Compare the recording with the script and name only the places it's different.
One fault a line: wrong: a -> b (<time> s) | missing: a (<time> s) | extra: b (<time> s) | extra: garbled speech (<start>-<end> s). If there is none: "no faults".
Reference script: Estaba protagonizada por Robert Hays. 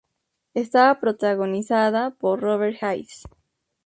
no faults